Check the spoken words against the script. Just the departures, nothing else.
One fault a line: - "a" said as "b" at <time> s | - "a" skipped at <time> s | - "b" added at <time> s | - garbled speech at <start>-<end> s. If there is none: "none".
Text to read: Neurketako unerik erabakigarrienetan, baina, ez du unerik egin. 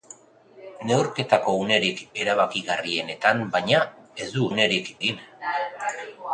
none